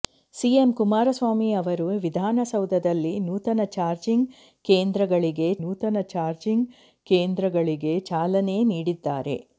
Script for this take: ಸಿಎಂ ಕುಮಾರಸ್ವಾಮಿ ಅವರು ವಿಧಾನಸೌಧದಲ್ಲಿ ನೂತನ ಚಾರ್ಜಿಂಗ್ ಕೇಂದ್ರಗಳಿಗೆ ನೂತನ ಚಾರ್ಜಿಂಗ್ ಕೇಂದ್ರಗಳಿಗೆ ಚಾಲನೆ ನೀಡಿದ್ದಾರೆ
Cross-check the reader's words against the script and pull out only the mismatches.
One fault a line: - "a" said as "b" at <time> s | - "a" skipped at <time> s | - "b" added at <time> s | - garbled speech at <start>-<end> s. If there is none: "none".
none